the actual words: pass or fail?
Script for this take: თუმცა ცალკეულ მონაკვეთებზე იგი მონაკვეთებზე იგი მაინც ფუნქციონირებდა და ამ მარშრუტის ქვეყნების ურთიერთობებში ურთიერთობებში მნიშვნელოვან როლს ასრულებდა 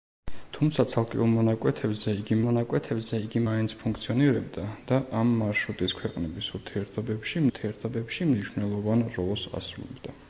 pass